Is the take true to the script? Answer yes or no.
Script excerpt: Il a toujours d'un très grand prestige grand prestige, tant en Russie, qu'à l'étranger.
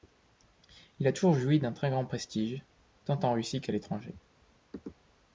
no